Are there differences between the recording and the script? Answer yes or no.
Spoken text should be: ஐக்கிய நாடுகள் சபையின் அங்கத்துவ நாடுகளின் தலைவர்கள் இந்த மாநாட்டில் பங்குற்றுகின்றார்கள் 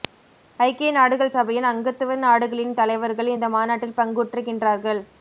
no